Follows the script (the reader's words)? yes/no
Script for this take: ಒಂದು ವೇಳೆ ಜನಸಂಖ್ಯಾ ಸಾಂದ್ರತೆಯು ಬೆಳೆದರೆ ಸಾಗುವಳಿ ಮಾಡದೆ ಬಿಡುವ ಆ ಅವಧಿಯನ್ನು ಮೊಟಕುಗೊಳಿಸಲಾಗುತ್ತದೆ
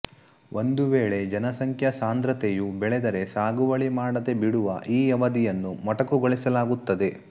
no